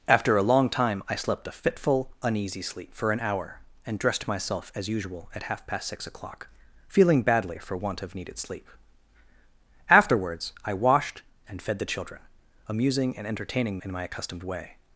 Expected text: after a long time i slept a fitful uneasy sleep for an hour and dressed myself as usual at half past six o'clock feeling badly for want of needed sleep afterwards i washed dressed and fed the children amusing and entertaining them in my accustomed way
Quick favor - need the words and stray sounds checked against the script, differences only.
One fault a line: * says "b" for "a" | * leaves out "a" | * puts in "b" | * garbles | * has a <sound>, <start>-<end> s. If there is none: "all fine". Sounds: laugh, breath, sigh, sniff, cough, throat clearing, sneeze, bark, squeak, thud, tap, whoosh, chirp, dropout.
* leaves out "dressed"
* leaves out "them"